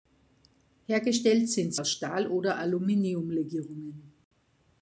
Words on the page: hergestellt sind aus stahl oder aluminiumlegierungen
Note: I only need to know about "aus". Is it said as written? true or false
true